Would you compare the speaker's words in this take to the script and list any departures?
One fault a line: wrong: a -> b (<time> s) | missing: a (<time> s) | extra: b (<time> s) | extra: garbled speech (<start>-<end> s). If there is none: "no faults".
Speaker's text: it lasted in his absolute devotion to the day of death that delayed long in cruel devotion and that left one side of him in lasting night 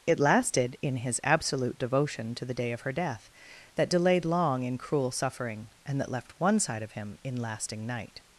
extra: her (2.8 s)
wrong: devotion -> suffering (5.1 s)